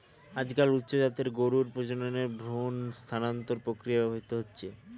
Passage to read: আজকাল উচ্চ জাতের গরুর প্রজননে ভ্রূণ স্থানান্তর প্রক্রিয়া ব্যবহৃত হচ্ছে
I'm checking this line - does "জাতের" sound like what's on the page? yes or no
yes